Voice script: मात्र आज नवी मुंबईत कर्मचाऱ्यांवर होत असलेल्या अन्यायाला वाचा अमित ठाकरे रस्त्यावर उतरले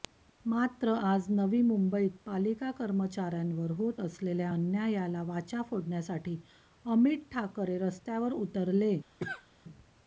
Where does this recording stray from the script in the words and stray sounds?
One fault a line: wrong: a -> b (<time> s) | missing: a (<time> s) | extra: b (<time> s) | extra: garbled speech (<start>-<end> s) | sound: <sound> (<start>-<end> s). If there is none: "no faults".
extra: पालिका (2.2 s)
extra: फोडण्यासाठी (5.7 s)
sound: cough (9.2-9.5 s)